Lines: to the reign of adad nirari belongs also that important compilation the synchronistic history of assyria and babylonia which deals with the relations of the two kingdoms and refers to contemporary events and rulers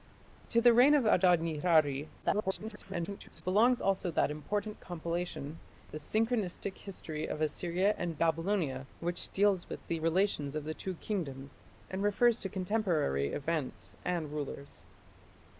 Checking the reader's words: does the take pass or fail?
fail